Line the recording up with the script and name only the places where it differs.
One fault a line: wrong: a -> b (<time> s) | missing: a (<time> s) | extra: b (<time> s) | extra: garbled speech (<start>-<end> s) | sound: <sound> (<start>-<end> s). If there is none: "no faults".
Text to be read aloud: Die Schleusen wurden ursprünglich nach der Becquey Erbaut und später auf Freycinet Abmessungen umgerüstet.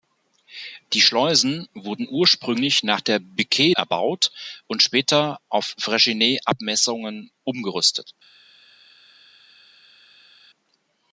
no faults